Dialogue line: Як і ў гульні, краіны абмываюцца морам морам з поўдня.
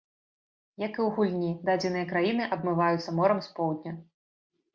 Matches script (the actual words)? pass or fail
fail